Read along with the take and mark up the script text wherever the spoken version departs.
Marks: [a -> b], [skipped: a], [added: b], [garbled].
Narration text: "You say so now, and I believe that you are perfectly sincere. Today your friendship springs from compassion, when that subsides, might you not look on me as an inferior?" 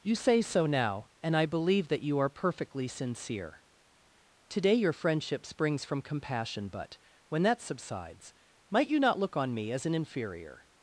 "You say so now, and I believe that you are perfectly sincere. Today your friendship springs from compassion, [added: but] when that subsides, might you not look on me as an inferior?"